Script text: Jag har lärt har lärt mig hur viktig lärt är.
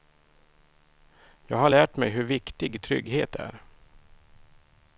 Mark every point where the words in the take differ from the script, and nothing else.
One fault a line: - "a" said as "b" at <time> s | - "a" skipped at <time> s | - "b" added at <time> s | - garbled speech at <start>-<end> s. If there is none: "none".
- "har lärt" skipped at 2.0 s
- "lärt" said as "trygghet" at 2.8 s